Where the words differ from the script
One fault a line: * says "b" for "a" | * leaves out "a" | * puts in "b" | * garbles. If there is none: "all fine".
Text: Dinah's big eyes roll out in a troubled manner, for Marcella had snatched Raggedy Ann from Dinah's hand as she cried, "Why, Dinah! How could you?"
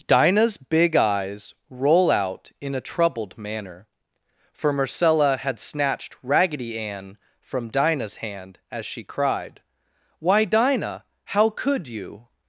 all fine